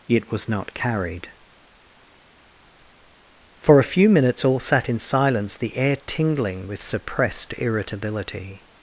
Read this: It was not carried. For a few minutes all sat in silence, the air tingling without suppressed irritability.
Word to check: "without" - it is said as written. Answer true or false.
false